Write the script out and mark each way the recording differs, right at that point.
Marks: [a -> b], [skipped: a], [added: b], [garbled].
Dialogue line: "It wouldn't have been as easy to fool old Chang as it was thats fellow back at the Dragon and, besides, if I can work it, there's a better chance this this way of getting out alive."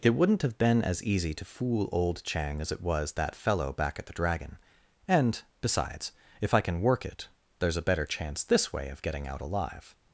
"It wouldn't have been as easy to fool old Chang as it was [thats -> that] fellow back at the Dragon and, besides, if I can work it, there's a better chance this [skipped: this] way of getting out alive."